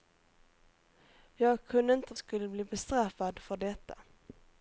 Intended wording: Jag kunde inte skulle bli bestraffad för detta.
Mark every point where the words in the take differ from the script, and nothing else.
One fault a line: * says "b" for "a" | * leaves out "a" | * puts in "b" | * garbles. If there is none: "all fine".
all fine